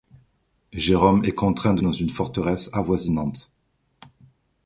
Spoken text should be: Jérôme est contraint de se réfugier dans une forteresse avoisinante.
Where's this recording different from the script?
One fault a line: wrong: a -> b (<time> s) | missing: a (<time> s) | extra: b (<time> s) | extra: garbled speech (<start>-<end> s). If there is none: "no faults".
missing: se réfugier (1.8 s)